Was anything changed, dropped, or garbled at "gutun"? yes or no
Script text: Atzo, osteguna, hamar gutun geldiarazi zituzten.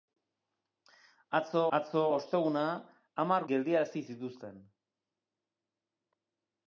yes